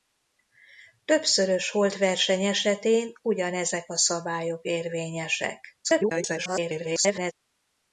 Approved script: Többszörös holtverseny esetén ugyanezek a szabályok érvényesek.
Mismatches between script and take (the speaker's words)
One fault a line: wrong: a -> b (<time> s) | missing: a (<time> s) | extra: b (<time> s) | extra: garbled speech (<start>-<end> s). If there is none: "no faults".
extra: garbled speech (5.8-7.3 s)